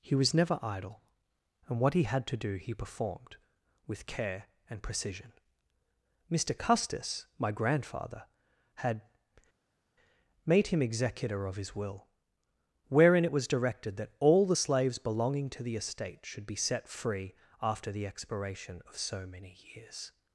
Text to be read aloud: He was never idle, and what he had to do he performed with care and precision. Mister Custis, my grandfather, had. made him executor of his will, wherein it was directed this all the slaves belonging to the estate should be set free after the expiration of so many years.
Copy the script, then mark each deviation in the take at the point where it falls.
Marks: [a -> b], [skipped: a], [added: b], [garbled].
He was never idle, and what he had to do he performed with care and precision. Mister Custis, my grandfather, had. made him executor of his will, wherein it was directed [this -> that] all the slaves belonging to the estate should be set free after the expiration of so many years.